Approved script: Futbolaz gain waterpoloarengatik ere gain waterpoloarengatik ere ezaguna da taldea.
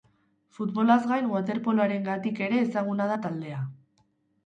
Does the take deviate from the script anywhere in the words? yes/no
yes